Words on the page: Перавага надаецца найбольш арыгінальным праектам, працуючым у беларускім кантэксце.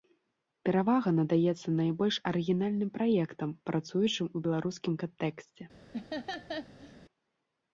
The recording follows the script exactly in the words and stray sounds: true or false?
false